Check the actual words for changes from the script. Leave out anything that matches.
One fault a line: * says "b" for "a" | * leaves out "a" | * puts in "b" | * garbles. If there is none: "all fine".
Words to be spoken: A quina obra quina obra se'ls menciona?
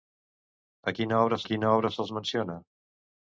all fine